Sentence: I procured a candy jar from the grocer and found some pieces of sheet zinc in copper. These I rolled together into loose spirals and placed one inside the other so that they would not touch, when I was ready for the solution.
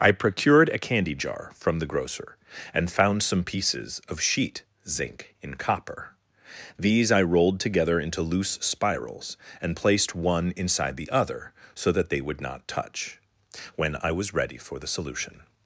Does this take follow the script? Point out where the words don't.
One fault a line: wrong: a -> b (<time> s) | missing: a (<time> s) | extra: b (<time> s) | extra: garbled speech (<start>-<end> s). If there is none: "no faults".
no faults